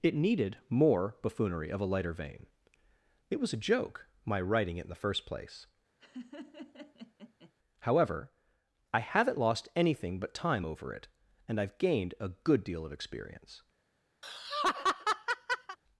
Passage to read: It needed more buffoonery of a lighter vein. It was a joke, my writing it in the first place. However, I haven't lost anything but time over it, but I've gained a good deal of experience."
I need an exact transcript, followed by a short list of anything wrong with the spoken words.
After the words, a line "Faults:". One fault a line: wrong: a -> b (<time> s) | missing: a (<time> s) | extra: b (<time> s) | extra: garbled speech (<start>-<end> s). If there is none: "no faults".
It needed more buffoonery of a lighter vein. It was a joke, my writing it in the first place. However, I haven't lost anything but time over it, and I've gained a good deal of experience."
Faults:
wrong: but -> and (11.5 s)